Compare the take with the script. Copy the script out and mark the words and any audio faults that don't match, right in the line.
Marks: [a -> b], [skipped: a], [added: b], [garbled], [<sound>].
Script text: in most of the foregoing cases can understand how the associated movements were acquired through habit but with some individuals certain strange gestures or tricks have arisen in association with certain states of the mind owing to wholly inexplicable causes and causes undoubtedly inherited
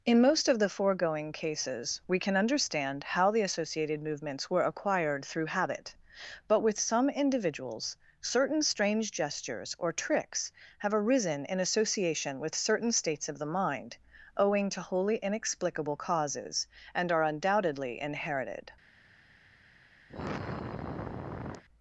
in most of the foregoing cases [added: we] can understand how the associated movements were acquired through habit but with some individuals certain strange gestures or tricks have arisen in association with certain states of the mind owing to wholly inexplicable causes and [causes -> are] undoubtedly inherited [sigh]